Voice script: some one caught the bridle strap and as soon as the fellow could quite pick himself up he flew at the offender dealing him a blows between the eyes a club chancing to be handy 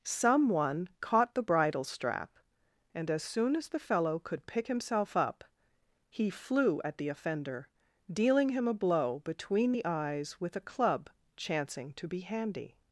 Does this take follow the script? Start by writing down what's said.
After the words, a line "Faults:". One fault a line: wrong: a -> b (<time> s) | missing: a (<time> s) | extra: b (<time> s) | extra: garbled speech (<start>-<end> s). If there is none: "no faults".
some one caught the bridle strap and as soon as the fellow could pick himself up he flew at the offender dealing him a blow between the eyes with a club chancing to be handy
Faults:
missing: quite (4.5 s)
wrong: blows -> blow (8.7 s)
extra: with (10.4 s)